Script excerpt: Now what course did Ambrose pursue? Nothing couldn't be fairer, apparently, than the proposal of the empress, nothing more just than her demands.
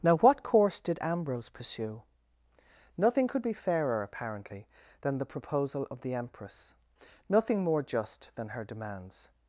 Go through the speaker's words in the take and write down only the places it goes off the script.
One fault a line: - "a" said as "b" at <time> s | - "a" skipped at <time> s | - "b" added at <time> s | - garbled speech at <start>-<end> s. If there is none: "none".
- "couldn't" said as "could" at 3.3 s